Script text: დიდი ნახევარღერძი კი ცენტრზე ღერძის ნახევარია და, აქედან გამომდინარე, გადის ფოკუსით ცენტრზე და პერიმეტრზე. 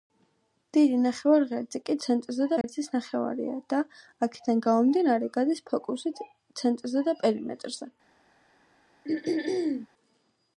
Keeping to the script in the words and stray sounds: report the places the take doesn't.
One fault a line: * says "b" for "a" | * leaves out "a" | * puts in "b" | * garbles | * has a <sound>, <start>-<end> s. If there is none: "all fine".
* has a dropout, 2.6-2.6 s
* has a throat clearing, 9.0-9.9 s